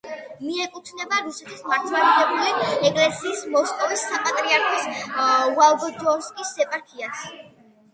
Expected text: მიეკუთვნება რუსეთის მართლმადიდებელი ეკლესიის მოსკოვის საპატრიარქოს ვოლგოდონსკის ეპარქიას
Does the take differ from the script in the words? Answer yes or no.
no